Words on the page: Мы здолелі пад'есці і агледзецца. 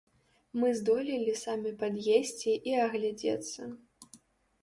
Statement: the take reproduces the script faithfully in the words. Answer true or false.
false